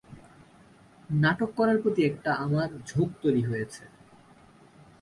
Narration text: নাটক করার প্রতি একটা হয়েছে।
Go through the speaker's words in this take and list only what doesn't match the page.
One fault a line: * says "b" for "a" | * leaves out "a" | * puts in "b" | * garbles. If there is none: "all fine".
* puts in "আমার ঝোঁক তৈরি"